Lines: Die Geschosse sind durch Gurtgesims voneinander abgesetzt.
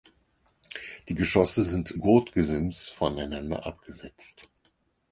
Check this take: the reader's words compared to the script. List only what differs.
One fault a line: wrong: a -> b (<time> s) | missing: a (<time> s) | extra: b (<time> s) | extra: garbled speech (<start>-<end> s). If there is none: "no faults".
missing: durch (1.9 s)